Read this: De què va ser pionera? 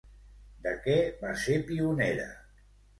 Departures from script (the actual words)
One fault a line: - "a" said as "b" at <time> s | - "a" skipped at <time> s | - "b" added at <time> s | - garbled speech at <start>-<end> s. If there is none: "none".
none